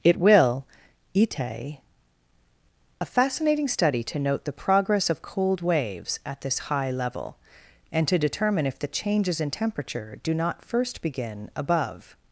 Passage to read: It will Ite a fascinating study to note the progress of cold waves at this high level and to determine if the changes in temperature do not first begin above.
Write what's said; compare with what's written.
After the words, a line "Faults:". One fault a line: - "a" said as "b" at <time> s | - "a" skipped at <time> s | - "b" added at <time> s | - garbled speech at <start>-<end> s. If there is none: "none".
It will Ite a fascinating study to note the progress of cold waves at this high level and to determine if the changes in temperature do not first begin above.
Faults:
none